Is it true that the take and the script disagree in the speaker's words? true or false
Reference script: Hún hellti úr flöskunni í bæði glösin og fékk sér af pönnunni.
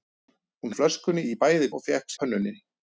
true